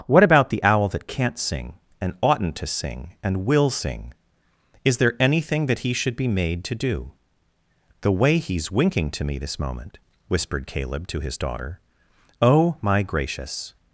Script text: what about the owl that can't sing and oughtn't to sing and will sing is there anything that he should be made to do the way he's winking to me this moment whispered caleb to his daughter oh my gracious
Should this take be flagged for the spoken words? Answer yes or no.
no